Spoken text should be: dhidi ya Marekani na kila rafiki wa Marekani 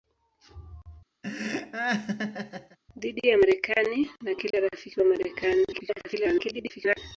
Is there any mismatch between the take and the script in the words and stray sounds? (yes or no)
yes